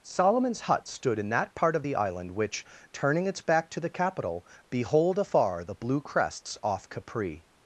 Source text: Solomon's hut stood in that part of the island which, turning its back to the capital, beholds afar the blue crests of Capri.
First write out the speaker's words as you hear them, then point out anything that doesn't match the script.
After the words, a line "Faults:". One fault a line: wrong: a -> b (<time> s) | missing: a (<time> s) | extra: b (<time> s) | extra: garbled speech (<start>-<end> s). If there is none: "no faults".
Solomon's hut stood in that part of the island which, turning its back to the capital, behold afar the blue crests off Capri.
Faults:
wrong: beholds -> behold (4.7 s)
wrong: of -> off (6.6 s)